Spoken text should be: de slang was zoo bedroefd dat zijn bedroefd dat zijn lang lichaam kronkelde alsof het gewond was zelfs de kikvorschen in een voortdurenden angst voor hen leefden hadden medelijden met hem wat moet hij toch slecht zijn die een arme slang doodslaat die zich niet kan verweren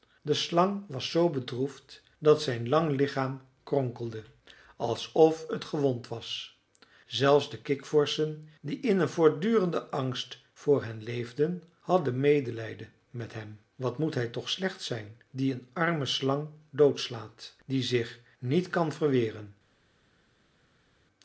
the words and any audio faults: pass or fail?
fail